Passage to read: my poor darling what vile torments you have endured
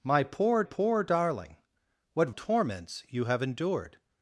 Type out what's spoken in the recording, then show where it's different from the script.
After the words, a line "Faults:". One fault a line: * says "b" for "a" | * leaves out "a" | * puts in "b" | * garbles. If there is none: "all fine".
my poor poor darling what torments you have endured
Faults:
* puts in "poor"
* leaves out "vile"